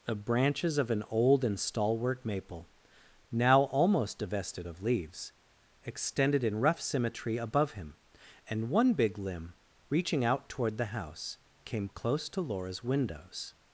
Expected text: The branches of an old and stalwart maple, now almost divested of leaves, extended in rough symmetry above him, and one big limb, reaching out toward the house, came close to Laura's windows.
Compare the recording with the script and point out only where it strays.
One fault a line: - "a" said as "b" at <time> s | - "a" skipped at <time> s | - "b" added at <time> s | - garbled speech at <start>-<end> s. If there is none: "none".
none